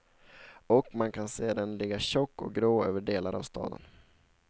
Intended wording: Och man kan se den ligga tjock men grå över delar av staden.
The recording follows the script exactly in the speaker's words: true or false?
false